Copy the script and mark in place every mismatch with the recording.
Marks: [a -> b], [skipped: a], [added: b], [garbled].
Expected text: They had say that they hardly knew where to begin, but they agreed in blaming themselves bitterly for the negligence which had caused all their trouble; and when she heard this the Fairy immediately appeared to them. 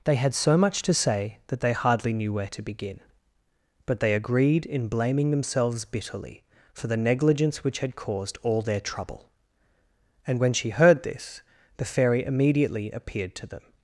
They had [added: so much to] say that they hardly knew where to begin, but they agreed in blaming themselves bitterly for the negligence which had caused all their trouble; and when she heard this the Fairy immediately appeared to them.